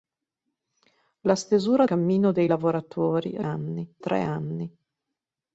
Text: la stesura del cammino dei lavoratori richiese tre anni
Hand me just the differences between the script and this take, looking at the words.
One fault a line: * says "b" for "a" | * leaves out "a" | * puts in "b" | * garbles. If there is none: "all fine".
* leaves out "del"
* says "anni" for "richiese"